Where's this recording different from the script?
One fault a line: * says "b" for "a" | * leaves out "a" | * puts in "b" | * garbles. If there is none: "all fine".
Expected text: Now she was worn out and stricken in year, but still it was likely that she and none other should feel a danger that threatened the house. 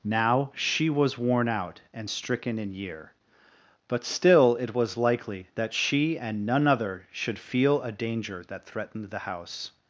all fine